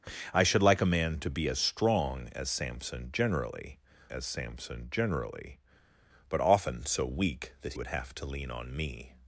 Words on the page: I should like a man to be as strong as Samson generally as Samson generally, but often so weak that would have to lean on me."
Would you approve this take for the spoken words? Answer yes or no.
yes